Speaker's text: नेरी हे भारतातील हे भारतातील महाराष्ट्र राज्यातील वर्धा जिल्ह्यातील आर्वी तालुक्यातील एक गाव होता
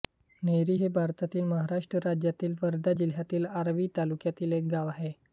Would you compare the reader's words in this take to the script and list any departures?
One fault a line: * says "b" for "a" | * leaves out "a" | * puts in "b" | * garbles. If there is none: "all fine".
* leaves out "हे भारतातील"
* says "आहे" for "होता"